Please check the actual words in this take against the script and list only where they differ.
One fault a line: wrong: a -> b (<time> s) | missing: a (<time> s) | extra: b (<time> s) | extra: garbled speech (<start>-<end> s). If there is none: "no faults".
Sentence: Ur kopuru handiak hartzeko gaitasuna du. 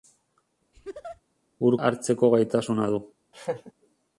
missing: kopuru handiak (1.8 s)